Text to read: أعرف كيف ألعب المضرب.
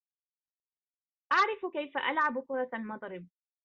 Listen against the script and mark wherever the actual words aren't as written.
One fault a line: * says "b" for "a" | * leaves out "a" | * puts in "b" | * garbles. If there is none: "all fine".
* puts in "كرة"